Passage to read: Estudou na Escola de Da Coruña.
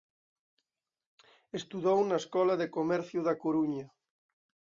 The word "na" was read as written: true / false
true